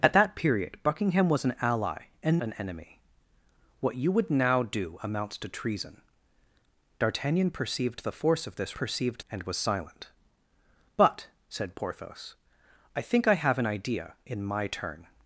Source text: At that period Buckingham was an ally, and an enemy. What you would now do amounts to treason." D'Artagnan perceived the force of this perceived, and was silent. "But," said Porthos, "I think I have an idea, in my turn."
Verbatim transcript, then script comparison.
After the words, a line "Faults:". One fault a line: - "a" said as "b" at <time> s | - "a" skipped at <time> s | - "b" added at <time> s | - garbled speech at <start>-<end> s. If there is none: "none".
At that period Buckingham was an ally, and an enemy. What you would now do amounts to treason." D'Artagnan perceived the force of this perceived, and was silent. "But," said Porthos, "I think I have an idea, in my turn."
Faults:
none